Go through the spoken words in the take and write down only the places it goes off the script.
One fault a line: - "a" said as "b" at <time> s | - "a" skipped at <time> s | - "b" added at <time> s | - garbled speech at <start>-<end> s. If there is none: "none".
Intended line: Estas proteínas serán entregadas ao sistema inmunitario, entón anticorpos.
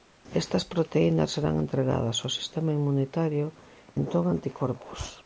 none